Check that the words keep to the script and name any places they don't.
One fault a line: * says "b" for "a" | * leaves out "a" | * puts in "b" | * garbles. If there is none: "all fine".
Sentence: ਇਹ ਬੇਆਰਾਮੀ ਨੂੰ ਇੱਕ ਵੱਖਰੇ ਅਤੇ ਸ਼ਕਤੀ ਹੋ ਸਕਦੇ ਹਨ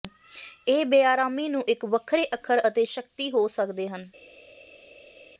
* puts in "ਅੱਖਰ"